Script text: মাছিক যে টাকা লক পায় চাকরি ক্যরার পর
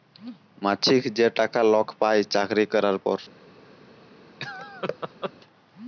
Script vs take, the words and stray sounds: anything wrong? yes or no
yes